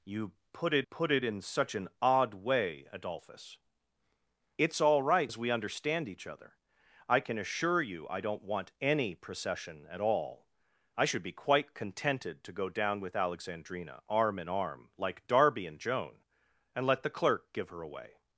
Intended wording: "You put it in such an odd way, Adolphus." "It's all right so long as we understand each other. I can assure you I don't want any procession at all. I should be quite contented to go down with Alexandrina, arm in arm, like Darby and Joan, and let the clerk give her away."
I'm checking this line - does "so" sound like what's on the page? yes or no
no